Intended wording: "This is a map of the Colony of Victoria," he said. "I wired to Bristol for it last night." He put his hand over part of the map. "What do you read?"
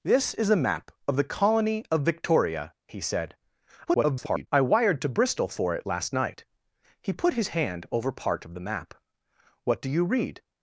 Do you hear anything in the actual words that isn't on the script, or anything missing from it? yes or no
yes